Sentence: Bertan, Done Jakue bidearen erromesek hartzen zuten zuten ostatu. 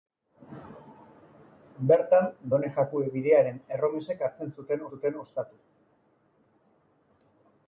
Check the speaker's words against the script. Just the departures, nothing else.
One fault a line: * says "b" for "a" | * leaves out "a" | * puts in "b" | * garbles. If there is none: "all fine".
all fine